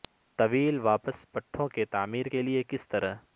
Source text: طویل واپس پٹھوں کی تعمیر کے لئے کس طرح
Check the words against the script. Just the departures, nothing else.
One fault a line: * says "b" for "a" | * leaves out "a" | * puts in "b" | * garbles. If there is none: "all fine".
all fine